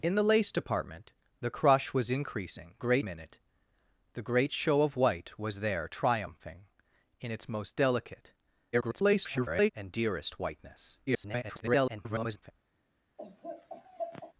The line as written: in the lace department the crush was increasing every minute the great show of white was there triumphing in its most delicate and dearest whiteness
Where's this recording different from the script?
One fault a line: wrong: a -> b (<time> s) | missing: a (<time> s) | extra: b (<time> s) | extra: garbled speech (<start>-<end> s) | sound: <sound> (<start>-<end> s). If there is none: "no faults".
wrong: every -> great (2.8 s)
extra: garbled speech (8.7-9.7 s)
extra: garbled speech (11.1-12.5 s)
sound: laugh (13.2-14.3 s)